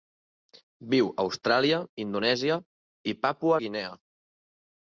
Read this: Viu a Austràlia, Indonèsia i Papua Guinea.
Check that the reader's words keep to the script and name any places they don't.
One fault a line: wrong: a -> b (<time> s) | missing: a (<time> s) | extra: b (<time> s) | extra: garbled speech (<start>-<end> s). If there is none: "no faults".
no faults